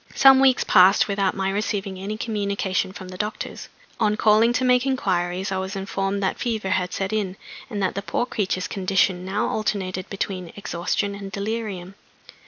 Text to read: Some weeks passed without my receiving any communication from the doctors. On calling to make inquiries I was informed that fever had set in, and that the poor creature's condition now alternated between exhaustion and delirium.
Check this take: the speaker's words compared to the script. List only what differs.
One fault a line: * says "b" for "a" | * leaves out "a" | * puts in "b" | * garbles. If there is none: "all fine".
all fine